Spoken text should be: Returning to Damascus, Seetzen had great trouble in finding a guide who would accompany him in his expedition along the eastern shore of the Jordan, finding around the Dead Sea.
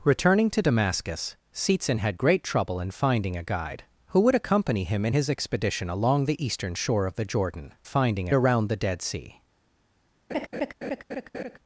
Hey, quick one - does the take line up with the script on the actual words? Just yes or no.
yes